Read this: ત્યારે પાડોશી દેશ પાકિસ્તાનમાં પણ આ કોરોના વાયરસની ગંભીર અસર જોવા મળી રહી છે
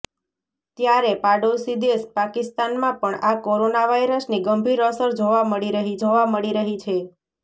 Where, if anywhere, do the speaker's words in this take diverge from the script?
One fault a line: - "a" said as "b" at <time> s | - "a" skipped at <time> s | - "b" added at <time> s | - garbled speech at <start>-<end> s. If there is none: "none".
- "જોવા મળી રહી" added at 6.0 s